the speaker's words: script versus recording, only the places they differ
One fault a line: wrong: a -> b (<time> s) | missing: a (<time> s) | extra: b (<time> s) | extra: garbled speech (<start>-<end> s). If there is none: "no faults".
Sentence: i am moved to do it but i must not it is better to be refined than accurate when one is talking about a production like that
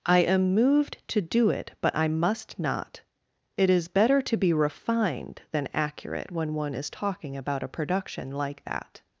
no faults